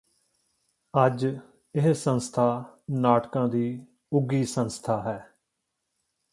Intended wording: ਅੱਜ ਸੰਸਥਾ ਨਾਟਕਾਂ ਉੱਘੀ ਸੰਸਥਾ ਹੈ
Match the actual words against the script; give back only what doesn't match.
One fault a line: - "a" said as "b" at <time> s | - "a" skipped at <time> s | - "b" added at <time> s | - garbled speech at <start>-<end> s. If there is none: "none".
- "ਇਹ" added at 1.8 s
- "ਦੀ" added at 3.5 s